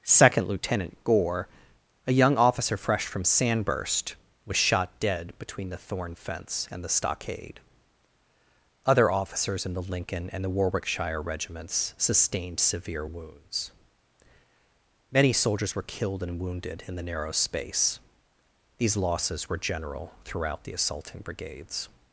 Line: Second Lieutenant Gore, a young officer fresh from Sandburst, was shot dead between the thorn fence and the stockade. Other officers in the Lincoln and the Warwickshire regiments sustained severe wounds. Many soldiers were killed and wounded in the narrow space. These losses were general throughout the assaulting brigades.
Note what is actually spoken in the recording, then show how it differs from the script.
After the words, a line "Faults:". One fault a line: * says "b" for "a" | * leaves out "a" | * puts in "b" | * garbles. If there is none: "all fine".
Second Lieutenant Gore, a young officer fresh from Sandburst, was shot dead between the thorn fence and the stockade. Other officers in the Lincoln and the Warwickshire regiments sustained severe wounds. Many soldiers were killed and wounded in the narrow space. These losses were general throughout the assaulting brigades.
Faults:
all fine